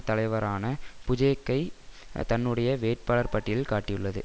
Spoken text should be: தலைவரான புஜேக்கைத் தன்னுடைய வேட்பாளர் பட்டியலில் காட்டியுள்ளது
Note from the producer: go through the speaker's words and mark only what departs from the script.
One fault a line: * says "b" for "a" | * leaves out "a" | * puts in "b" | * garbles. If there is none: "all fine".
all fine